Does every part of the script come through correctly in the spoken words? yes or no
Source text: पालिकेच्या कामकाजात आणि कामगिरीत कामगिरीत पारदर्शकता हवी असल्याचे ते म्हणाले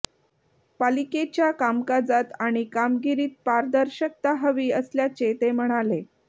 no